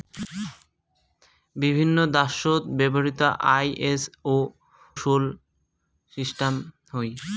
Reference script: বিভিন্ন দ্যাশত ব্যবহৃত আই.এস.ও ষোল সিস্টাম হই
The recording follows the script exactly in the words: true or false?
true